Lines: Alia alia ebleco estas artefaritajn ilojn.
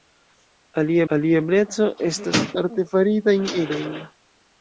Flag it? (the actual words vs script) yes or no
no